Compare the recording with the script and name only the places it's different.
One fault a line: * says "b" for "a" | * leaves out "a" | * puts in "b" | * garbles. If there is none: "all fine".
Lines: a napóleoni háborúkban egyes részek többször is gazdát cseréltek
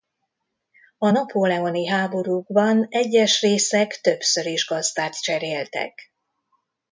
all fine